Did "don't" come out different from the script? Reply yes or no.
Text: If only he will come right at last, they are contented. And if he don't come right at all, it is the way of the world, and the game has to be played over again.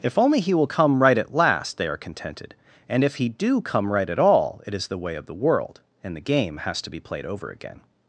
yes